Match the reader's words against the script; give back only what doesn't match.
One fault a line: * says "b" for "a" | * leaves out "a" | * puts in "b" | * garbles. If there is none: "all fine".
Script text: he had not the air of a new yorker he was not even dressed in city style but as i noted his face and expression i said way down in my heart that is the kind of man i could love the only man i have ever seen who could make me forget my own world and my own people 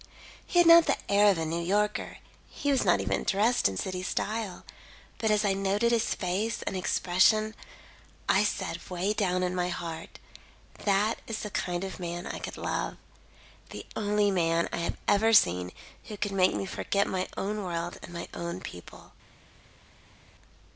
all fine